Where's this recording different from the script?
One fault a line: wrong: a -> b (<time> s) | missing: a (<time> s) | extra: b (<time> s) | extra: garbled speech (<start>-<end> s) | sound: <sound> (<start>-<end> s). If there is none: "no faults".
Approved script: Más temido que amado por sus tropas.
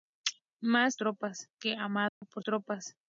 wrong: temido -> tropas (1.0 s)
sound: dropout (2.1-2.2 s)
missing: sus (2.4 s)